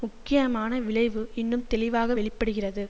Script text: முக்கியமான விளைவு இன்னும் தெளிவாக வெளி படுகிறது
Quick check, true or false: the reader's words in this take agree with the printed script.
true